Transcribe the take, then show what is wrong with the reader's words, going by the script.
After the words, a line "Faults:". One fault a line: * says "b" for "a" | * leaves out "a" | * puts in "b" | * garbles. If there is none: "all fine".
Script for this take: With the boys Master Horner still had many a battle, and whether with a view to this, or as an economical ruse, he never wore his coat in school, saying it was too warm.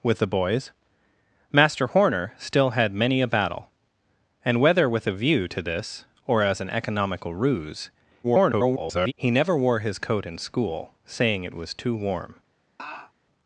With the boys Master Horner still had many a battle, and whether with a view to this, or as an economical ruse, [garbled] he never wore his coat in school, saying it was too warm.
Faults:
* garbles